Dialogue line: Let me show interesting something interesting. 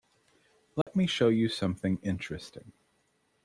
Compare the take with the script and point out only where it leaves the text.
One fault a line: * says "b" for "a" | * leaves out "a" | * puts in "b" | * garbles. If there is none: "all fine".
* says "you" for "interesting"